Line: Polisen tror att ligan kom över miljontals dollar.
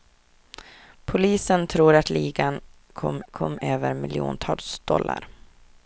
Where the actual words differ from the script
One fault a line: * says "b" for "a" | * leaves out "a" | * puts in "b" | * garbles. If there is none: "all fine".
* puts in "kom"